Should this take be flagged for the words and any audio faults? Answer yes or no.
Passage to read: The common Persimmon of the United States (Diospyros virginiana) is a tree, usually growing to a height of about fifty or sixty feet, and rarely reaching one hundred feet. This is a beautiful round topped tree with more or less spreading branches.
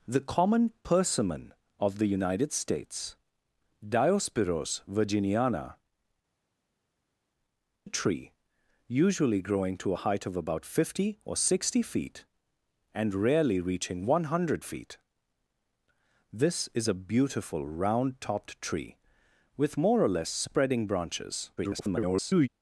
yes